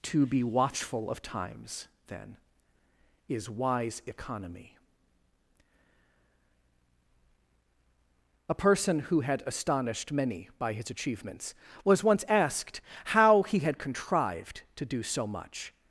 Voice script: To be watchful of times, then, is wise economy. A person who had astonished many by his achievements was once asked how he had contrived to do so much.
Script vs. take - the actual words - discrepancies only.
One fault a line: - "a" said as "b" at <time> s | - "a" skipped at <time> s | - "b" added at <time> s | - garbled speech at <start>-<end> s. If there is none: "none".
none